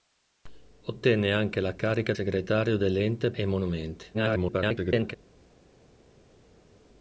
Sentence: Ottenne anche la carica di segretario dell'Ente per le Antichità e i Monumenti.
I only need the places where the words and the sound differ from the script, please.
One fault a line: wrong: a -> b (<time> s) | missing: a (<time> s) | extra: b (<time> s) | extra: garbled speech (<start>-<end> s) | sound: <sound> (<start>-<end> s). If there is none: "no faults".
missing: di (2.1 s)
missing: per le Antichità (3.3 s)
extra: garbled speech (4.1-5.2 s)